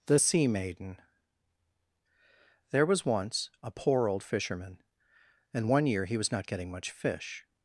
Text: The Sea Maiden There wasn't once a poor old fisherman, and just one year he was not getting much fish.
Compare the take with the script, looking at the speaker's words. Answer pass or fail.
fail